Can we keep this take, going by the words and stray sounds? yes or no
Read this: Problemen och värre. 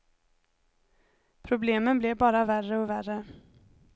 no